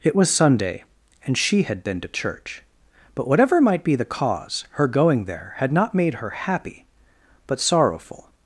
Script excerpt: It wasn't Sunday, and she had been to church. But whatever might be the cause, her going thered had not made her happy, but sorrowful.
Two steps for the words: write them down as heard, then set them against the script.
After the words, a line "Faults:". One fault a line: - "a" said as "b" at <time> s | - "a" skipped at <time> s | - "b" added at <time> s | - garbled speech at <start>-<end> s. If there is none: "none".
It was Sunday, and she had been to church. But whatever might be the cause, her going there had not made her happy, but sorrowful.
Faults:
- "wasn't" said as "was" at 0.1 s
- "thered" said as "there" at 5.2 s